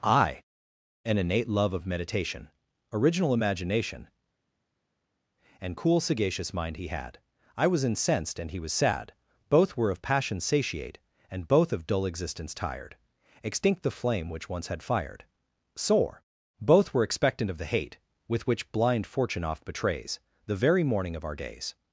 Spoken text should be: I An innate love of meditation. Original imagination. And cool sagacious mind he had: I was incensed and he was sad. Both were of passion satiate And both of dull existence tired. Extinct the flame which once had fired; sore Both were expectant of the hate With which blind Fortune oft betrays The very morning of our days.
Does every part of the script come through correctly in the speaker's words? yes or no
yes